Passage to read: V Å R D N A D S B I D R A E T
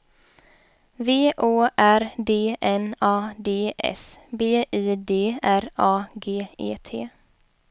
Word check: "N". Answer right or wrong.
right